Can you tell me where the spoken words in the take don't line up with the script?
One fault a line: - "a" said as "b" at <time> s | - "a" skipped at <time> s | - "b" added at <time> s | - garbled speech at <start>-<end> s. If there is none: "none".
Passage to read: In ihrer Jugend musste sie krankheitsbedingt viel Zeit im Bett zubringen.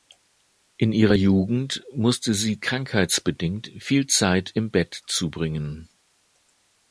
none